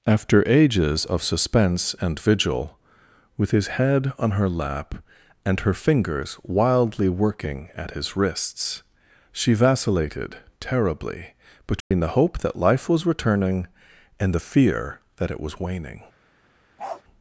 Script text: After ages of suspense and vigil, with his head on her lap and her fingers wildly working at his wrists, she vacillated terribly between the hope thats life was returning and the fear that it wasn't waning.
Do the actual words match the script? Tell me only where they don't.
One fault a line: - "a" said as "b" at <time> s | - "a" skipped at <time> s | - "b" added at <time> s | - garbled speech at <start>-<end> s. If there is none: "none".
- "thats" said as "that" at 12.4 s
- "wasn't" said as "was" at 15.4 s